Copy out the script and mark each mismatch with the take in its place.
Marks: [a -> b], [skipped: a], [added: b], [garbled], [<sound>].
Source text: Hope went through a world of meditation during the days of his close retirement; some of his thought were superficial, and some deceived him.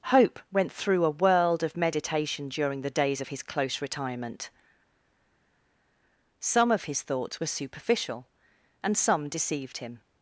Hope went through a world of meditation during the days of his close retirement; some of his [thought -> thoughts] were superficial, and some deceived him.